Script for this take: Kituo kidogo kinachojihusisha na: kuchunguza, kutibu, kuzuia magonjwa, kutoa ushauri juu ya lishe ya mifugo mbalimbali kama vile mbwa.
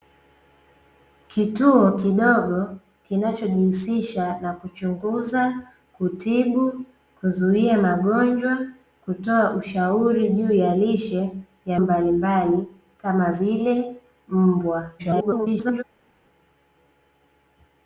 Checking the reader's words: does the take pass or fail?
fail